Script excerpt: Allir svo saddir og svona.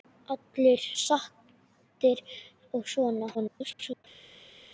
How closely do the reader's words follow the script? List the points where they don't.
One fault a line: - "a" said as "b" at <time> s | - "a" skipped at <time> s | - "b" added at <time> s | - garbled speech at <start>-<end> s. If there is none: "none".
- "svo" skipped at 0.8 s
- garbled speech at 3.3-4.0 s